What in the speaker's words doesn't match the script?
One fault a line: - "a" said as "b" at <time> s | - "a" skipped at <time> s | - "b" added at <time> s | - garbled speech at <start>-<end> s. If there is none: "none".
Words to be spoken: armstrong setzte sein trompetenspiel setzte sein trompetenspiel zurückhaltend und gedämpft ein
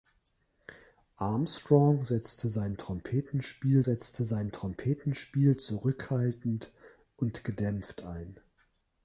none